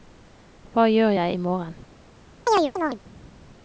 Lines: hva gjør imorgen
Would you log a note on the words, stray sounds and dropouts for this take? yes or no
yes